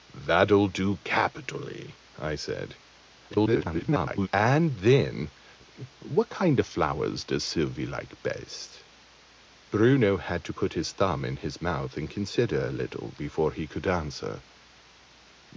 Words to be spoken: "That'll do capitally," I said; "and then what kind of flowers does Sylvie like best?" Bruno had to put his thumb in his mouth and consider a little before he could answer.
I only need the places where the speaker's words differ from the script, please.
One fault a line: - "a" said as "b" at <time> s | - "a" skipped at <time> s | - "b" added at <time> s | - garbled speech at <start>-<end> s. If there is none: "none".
- garbled speech at 3.3-4.3 s